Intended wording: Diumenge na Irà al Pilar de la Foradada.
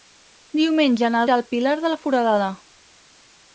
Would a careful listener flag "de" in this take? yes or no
no